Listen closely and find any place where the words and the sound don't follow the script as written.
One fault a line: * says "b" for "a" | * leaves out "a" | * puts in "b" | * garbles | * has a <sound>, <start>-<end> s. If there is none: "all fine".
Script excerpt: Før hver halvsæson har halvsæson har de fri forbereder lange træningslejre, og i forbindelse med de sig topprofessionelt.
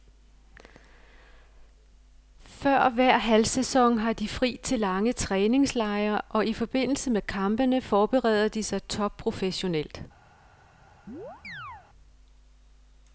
* leaves out "halvsæson har"
* says "til" for "forbereder"
* puts in "kampene forbereder"
* has a chirp, 11.1-11.9 s